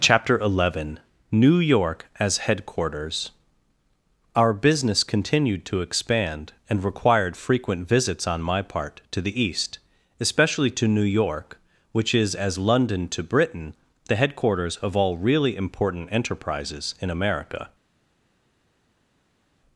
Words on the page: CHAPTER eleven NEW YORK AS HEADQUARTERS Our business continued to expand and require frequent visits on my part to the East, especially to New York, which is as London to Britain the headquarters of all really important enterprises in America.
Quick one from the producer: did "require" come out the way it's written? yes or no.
no